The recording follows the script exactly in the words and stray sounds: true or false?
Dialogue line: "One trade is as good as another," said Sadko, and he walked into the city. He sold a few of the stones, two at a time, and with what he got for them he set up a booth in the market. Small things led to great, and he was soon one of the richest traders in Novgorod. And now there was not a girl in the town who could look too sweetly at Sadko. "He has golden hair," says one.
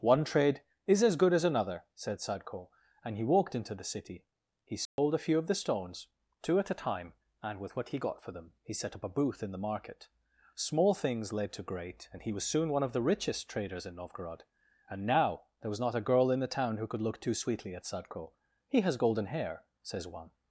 false